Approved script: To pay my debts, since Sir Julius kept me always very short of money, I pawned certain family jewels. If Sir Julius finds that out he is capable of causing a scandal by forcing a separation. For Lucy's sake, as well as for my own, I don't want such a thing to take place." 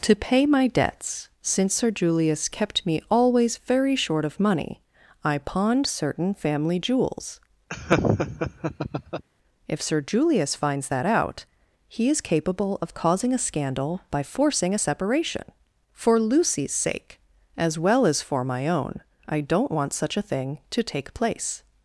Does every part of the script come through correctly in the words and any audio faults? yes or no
no